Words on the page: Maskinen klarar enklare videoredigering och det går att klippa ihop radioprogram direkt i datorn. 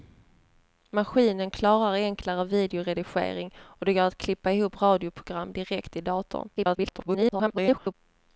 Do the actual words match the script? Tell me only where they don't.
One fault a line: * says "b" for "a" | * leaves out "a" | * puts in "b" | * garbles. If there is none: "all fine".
* garbles